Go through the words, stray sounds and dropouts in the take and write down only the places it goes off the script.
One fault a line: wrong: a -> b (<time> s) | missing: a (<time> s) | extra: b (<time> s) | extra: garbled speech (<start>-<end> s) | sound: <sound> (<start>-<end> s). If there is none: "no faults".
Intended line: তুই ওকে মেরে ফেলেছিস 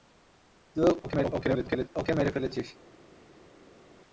extra: garbled speech (1.0-1.9 s)